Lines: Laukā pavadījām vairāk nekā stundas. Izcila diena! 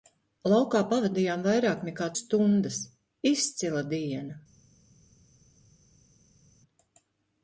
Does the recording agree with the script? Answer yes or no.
yes